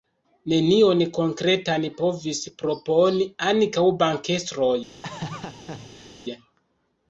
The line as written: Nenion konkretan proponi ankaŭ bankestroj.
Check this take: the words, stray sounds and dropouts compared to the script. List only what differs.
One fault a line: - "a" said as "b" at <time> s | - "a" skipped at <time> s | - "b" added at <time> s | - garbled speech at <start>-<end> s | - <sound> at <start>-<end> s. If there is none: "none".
- "povis" added at 2.0 s
- laugh at 5.0-6.2 s